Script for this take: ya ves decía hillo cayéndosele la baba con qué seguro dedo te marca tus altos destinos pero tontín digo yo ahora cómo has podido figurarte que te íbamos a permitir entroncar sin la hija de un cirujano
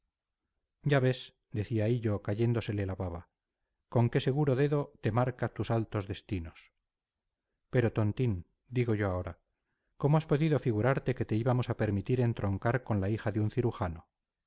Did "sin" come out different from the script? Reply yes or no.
yes